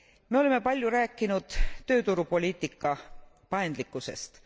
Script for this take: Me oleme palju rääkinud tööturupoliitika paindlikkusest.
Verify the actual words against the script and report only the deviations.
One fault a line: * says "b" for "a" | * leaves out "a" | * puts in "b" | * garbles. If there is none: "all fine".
all fine